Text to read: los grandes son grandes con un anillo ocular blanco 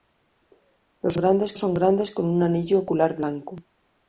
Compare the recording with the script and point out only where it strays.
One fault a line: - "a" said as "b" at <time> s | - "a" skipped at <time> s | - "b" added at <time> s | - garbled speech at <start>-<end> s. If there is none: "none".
none